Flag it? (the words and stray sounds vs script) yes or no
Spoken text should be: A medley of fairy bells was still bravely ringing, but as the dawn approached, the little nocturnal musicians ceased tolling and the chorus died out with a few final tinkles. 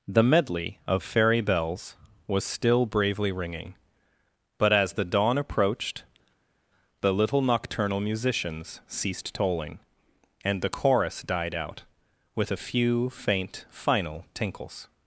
yes